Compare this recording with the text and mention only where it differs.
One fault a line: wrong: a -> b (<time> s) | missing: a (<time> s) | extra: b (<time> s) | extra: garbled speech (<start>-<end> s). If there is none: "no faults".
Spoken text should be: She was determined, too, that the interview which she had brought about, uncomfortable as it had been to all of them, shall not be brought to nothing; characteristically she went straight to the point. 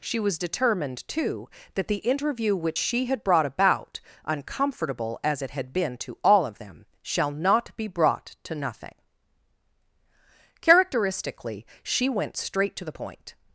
no faults